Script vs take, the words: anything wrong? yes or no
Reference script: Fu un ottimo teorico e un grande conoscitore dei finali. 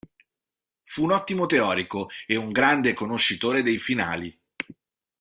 no